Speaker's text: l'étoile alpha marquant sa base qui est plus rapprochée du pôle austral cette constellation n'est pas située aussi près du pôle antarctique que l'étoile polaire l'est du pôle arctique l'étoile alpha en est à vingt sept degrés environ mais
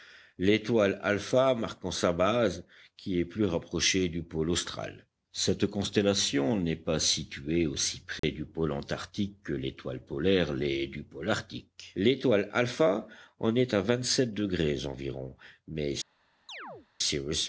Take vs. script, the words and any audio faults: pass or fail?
fail